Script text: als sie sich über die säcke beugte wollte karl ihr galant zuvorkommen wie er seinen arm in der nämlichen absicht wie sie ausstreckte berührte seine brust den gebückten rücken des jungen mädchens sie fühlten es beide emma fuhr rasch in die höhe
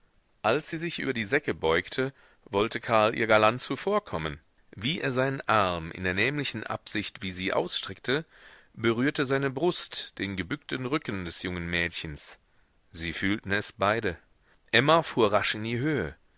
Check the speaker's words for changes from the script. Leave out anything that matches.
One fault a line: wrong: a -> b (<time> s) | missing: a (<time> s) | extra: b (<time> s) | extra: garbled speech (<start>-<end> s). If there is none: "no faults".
no faults